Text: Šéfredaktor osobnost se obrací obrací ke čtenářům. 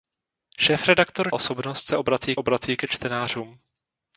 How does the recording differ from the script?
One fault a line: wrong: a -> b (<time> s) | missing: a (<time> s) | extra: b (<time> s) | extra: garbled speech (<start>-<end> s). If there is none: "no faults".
no faults